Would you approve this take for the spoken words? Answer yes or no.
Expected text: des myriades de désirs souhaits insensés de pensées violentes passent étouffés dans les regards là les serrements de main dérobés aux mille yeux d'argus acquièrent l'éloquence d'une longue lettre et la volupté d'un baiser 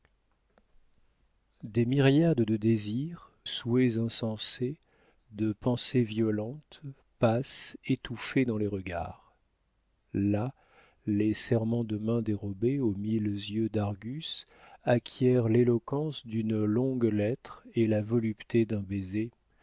yes